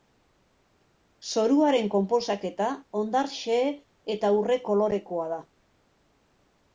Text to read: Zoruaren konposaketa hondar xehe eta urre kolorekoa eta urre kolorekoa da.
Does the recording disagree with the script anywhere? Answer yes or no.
yes